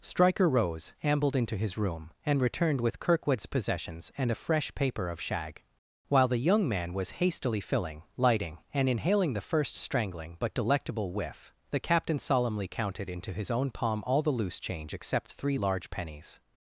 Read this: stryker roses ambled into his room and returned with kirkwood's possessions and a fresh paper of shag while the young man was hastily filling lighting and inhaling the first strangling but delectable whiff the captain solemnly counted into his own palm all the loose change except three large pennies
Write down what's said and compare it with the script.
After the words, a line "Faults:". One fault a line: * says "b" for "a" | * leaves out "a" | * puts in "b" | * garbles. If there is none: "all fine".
stryker rose ambled into his room and returned with kirkwood's possessions and a fresh paper of shag while the young man was hastily filling lighting and inhaling the first strangling but delectable whiff the captain solemnly counted into his own palm all the loose change except three large pennies
Faults:
* says "rose" for "roses"